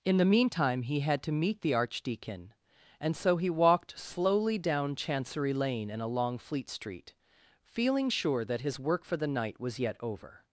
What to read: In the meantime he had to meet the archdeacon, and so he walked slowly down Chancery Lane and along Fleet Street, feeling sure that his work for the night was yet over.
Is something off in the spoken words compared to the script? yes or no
no